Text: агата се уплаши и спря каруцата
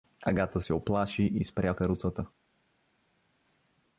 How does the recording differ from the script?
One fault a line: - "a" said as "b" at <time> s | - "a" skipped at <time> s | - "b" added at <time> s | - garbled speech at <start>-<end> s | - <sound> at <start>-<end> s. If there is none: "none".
none